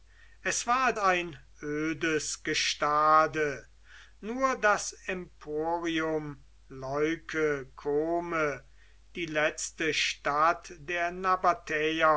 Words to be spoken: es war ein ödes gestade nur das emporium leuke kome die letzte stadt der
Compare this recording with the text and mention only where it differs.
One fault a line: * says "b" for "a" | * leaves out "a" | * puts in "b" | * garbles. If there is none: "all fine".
all fine